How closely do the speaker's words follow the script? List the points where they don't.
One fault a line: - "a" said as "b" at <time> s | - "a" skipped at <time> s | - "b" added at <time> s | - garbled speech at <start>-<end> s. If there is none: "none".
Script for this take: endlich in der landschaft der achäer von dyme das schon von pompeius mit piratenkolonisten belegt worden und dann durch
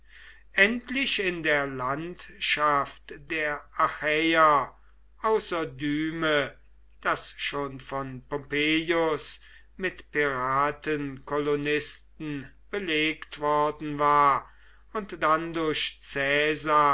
- "von" said as "außer" at 5.2 s
- "war" added at 14.0 s